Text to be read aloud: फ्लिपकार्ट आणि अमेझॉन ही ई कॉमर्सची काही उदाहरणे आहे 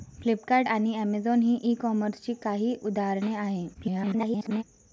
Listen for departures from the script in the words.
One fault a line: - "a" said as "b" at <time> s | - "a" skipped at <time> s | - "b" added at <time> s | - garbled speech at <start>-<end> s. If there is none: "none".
- garbled speech at 3.7-4.6 s